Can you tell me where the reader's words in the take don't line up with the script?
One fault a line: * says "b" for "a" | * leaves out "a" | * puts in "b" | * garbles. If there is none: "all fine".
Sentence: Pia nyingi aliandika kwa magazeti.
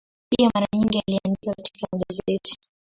* puts in "mara"
* says "katika" for "kwa"